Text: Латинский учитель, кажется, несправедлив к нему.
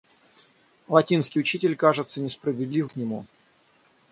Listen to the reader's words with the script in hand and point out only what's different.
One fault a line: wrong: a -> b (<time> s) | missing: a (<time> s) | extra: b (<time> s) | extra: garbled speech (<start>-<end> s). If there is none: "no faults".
no faults